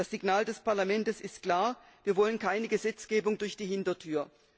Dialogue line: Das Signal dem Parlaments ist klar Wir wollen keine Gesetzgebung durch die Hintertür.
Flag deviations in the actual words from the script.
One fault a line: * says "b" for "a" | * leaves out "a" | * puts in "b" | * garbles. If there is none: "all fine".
* says "des" for "dem"